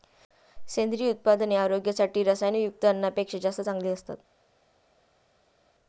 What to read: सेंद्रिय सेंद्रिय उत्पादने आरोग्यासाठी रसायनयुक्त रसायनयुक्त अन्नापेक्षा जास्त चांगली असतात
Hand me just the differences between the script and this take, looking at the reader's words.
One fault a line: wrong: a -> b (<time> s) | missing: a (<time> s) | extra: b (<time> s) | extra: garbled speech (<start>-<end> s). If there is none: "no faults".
missing: सेंद्रिय (1.1 s)
missing: रसायनयुक्त (2.9 s)